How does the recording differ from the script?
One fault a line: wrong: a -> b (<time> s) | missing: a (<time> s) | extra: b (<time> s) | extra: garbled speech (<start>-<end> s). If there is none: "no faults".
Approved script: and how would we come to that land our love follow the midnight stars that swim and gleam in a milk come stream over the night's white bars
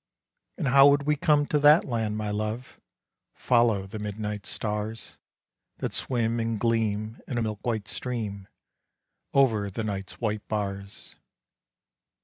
wrong: our -> my (2.2 s)
wrong: come -> white (7.6 s)